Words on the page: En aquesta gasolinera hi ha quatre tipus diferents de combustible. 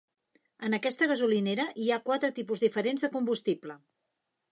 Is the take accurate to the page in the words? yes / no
yes